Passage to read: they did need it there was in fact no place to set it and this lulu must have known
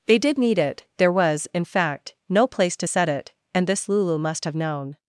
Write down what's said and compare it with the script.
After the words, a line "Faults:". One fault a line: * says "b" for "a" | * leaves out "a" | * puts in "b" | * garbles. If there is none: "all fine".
they did need it there was in fact no place to set it and this lulu must have known
Faults:
all fine